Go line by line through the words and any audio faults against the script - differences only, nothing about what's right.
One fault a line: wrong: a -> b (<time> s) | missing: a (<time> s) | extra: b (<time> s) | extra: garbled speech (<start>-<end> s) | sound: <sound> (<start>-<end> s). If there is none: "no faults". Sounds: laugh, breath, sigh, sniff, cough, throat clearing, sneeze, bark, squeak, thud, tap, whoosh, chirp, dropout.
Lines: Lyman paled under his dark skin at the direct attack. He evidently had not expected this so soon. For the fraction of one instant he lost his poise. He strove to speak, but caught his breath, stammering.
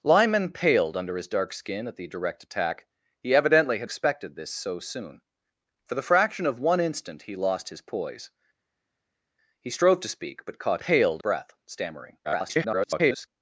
missing: not (3.9 s)
wrong: his -> paled (10.8 s)
extra: garbled speech (12.2-13.3 s)